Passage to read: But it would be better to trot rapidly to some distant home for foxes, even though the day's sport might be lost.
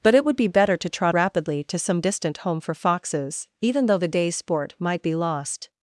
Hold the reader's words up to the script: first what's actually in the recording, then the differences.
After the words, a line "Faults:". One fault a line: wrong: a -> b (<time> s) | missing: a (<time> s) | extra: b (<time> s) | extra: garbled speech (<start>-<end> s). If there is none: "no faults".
But it would be better to trot rapidly to some distant home for foxes, even though the day's sport might be lost.
Faults:
no faults